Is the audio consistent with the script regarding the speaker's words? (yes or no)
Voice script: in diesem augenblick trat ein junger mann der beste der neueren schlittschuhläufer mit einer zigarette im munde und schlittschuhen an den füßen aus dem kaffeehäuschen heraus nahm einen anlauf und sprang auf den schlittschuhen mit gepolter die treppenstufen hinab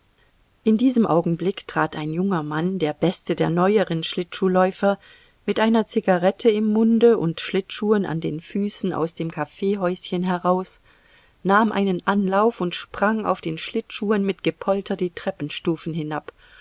yes